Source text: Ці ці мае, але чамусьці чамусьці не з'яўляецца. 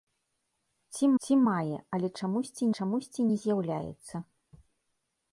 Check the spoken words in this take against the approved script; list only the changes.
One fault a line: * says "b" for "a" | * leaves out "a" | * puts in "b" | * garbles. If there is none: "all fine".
all fine